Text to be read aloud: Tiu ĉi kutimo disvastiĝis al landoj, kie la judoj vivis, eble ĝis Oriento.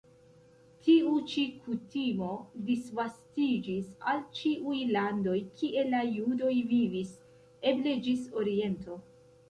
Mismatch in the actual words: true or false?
true